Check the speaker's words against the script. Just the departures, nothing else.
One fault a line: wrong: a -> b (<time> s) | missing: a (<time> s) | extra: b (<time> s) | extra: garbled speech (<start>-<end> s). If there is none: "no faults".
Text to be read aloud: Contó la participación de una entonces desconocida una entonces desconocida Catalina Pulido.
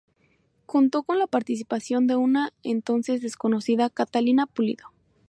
extra: con (1.0 s)
missing: una entonces desconocida (3.9 s)